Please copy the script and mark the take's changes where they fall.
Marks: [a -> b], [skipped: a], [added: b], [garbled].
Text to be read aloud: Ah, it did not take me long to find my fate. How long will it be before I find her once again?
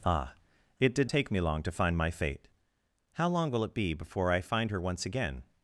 Ah, it did [skipped: not] take me long to find my fate. How long will it be before I find her once again?